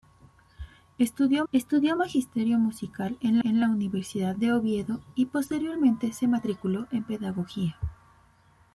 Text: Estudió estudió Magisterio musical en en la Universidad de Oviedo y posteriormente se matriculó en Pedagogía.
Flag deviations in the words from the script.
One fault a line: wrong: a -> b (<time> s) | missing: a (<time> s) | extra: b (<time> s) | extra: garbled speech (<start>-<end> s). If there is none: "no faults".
no faults